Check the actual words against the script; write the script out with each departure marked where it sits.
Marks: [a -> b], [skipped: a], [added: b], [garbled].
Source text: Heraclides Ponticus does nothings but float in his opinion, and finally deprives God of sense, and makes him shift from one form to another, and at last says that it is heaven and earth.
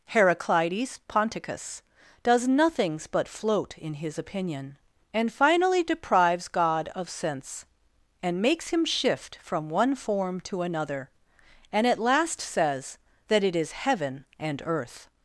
Heraclides Ponticus does nothings but float in his opinion, and finally deprives God of sense, and makes him shift from one form to another, and at last says that it is heaven and earth.